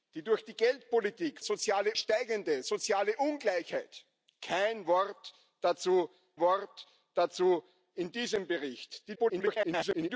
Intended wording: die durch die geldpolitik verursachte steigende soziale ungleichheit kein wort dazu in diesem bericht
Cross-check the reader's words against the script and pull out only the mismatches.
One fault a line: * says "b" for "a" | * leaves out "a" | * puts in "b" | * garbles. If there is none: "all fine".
* says "soziale" for "verursachte"
* puts in "wort dazu"
* garbles